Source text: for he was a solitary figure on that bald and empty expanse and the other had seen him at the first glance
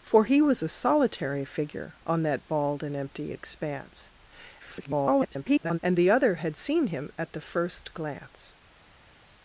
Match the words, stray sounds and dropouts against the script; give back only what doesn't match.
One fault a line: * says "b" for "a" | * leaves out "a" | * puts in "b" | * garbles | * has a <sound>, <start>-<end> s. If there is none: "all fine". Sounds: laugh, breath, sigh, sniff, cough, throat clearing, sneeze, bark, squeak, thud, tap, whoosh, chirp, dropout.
* garbles